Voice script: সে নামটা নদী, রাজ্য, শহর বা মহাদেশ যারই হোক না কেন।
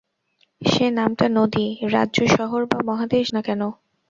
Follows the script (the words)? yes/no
no